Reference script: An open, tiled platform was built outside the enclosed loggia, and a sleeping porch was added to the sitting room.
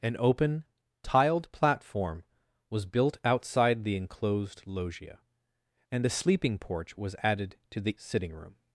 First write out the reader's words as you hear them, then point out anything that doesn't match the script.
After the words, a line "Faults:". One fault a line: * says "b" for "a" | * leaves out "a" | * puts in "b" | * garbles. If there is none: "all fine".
An open, tiled platform was built outside the enclosed loggia, and a sleeping porch was added to the sitting room.
Faults:
all fine